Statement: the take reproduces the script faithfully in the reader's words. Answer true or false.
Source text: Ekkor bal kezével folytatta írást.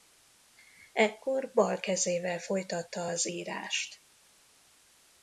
false